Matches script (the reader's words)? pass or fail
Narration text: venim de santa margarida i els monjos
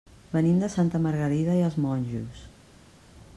pass